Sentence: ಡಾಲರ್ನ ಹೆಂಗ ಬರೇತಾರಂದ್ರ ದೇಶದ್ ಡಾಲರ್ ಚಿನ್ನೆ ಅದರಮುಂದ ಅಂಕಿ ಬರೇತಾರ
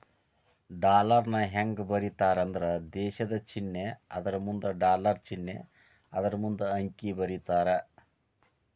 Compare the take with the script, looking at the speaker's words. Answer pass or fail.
fail